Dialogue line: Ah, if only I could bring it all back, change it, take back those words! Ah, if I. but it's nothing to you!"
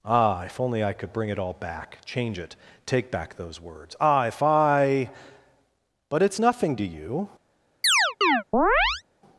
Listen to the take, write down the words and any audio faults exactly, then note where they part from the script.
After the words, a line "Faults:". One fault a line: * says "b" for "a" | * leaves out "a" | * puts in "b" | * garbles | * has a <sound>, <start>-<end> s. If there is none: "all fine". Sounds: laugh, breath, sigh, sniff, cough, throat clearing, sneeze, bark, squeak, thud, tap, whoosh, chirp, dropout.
Ah, if only I could bring it all back, change it, take back those words! Ah, if I. but it's nothing to you!"
Faults:
* has a chirp, 7.8-9.0 s